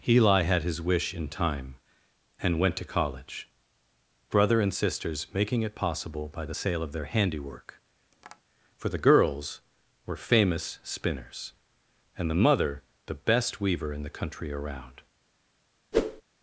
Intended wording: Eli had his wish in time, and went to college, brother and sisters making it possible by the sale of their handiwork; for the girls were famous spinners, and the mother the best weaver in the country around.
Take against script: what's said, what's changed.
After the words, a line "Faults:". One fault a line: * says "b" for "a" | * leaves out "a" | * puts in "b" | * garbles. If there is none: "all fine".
Eli had his wish in time, and went to college, brother and sisters making it possible by the sale of their handiwork; for the girls were famous spinners, and the mother the best weaver in the country around.
Faults:
all fine